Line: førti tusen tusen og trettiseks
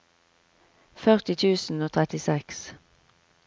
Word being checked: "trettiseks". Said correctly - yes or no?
yes